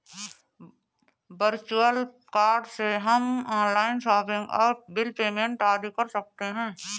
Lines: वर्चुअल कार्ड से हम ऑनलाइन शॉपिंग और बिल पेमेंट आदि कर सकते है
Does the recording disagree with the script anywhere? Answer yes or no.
no